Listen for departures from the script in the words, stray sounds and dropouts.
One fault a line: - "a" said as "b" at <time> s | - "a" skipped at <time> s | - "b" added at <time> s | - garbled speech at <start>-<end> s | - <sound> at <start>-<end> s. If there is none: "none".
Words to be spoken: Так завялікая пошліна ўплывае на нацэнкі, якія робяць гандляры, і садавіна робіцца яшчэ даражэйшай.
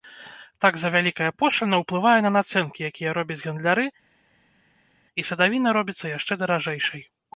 none